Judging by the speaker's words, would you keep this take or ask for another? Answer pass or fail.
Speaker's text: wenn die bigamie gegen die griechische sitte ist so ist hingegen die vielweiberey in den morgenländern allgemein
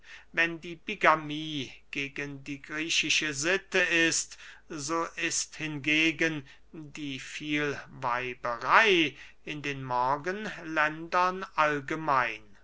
pass